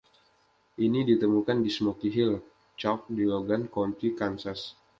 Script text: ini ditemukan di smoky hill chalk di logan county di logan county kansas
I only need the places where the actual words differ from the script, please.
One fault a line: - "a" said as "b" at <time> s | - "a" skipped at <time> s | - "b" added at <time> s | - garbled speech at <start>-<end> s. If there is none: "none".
- "di logan county" skipped at 4.1 s